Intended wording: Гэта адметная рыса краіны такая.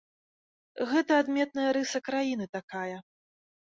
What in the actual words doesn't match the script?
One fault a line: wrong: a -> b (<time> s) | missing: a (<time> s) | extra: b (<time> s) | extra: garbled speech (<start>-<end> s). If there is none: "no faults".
no faults